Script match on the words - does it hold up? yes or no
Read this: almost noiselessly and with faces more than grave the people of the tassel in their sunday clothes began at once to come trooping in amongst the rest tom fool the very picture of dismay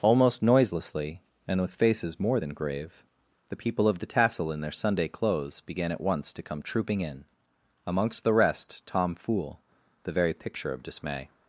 yes